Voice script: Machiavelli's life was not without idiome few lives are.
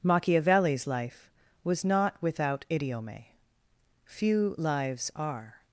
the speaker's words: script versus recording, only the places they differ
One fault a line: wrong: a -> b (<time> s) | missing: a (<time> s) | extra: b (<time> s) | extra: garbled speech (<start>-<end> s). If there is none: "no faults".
no faults